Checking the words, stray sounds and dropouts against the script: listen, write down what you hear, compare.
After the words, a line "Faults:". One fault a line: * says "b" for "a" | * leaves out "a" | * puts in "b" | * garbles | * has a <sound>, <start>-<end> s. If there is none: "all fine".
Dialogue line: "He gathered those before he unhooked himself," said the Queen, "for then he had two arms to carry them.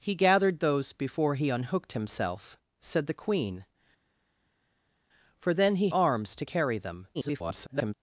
"He gathered those before he unhooked himself," said the Queen, "for then he arms to carry them. [garbled]
Faults:
* leaves out "had two"
* garbles